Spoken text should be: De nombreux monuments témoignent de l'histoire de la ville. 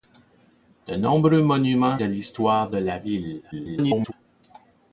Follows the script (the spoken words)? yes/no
no